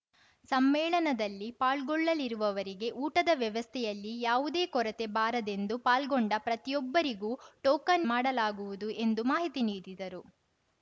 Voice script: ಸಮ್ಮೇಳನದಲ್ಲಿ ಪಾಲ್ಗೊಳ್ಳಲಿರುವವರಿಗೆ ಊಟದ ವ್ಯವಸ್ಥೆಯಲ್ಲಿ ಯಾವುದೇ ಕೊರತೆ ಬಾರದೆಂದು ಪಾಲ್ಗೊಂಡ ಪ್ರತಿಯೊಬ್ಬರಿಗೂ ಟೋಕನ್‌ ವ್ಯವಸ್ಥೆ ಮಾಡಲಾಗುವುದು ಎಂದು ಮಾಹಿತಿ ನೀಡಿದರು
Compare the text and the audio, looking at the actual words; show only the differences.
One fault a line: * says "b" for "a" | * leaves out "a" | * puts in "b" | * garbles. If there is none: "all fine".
* leaves out "ವ್ಯವಸ್ಥೆ"